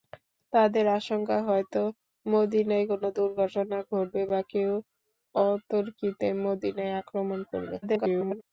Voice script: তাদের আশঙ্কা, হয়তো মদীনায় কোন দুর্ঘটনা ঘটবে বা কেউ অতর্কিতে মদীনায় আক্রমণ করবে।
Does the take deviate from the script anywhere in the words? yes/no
yes